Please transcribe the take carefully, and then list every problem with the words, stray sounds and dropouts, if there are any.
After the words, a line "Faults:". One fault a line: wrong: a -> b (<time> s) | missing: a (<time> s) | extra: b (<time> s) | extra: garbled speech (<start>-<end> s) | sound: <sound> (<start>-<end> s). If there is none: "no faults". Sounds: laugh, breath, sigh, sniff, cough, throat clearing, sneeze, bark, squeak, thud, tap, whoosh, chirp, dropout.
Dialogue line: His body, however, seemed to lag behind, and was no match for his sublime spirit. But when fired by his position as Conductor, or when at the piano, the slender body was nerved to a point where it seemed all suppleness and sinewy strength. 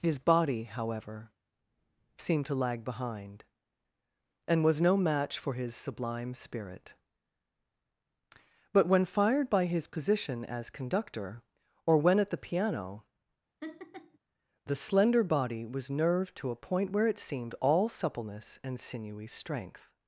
His body, however, seemed to lag behind, and was no match for his sublime spirit. But when fired by his position as Conductor, or when at the piano, the slender body was nerved to a point where it seemed all suppleness and sinewy strength.
Faults:
sound: laugh (13.6-14.2 s)